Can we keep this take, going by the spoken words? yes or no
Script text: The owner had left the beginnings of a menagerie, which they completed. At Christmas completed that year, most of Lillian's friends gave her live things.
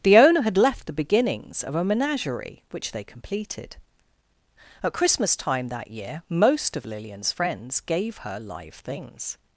no